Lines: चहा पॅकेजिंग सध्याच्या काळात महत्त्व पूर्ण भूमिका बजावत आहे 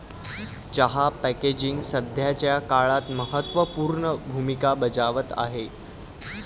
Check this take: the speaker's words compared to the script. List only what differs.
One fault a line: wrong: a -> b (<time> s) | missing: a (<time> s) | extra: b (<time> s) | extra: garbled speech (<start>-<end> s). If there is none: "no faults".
no faults